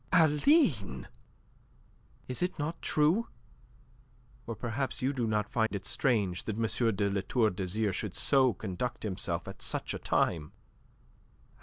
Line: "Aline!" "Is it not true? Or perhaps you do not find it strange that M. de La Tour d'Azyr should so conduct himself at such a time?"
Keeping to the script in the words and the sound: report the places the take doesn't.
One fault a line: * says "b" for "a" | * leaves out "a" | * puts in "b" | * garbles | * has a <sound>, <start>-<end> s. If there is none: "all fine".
* has a dropout, 5.7-5.7 s